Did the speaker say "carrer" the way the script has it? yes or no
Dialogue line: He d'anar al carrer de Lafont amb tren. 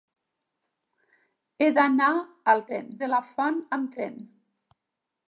no